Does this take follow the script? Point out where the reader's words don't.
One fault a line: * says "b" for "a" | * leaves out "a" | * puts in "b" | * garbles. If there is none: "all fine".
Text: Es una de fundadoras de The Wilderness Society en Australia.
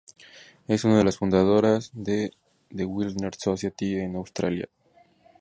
* puts in "las"